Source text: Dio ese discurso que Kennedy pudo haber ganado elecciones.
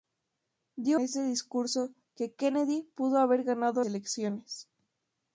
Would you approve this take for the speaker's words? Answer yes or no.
yes